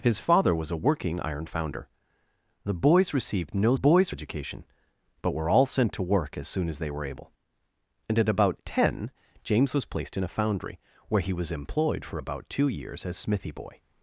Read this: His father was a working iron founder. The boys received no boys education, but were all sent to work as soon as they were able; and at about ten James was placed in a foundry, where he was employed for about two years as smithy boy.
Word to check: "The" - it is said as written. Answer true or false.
true